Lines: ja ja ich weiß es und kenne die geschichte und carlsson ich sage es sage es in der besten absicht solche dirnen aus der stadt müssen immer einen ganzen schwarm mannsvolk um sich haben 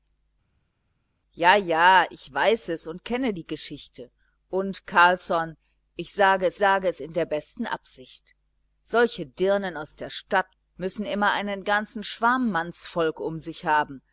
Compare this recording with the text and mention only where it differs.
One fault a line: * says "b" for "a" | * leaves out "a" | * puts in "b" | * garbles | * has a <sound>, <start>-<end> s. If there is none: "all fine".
all fine